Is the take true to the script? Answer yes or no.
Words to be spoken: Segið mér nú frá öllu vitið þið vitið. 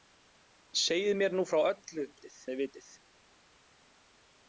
yes